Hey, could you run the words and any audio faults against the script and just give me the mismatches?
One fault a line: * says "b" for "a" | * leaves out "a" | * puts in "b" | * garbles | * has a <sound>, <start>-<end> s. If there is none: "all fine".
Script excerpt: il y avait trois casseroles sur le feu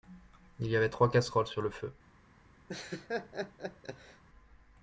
* has a laugh, 2.7-4.2 s